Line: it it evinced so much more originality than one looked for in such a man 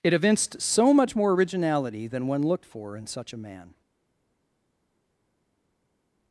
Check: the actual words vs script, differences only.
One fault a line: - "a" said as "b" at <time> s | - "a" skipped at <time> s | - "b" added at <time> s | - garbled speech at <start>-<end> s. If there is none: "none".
- "it" skipped at 0.1 s